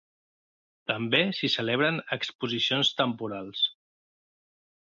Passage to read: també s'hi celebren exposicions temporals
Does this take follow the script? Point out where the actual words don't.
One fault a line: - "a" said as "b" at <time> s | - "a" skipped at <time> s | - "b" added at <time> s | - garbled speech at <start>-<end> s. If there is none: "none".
none